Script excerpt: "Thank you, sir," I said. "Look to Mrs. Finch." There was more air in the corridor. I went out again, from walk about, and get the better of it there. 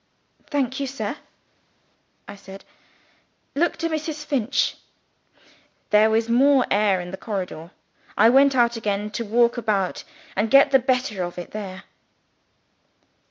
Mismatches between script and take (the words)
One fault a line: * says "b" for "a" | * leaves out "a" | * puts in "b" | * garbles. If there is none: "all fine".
* says "to" for "from"